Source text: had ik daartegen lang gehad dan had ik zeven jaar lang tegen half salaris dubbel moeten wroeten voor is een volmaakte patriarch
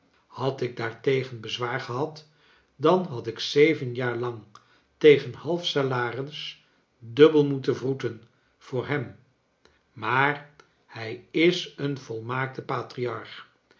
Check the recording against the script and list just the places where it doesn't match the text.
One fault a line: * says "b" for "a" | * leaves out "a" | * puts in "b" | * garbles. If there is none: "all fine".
* says "bezwaar" for "lang"
* puts in "hem maar hij"